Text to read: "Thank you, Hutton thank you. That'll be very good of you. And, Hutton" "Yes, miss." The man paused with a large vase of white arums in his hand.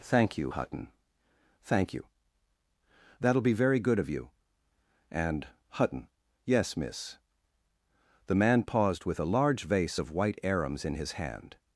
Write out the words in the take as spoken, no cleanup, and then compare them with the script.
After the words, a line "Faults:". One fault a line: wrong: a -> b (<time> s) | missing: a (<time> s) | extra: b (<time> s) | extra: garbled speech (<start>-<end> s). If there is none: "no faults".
"Thank you, Hutton thank you. That'll be very good of you. And, Hutton" "Yes, miss." The man paused with a large vase of white arums in his hand.
Faults:
no faults